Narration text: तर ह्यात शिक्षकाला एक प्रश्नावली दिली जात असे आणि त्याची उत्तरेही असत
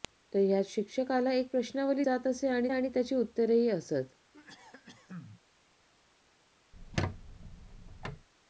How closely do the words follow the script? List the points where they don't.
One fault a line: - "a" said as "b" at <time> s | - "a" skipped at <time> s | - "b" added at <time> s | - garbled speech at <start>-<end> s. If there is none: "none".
- "दिली" skipped at 2.0 s
- "आणि" added at 2.7 s